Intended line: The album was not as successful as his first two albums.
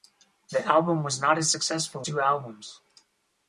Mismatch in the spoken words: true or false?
true